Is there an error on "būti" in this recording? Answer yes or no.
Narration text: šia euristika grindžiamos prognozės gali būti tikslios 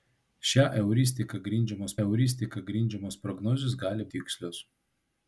yes